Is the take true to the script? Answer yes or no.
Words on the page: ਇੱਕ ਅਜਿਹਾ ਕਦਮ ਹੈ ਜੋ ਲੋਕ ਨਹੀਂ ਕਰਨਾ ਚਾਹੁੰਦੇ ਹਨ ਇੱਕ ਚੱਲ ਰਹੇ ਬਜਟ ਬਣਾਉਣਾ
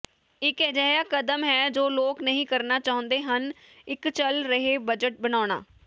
yes